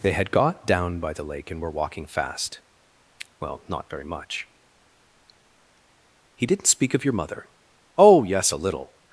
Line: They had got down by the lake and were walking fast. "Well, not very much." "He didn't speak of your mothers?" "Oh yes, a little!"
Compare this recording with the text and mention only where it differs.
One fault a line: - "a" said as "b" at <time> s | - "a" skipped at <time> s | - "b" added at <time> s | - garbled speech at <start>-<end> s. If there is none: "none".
- "mothers" said as "mother" at 7.1 s